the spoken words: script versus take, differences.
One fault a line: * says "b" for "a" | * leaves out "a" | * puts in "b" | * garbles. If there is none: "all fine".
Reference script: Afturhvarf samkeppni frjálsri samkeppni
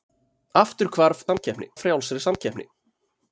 all fine